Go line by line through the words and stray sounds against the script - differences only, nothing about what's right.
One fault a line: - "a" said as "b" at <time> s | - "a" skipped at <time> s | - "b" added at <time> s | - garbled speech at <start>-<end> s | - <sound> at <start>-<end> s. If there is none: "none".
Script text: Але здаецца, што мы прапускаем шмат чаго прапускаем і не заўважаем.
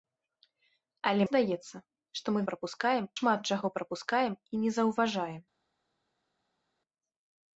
none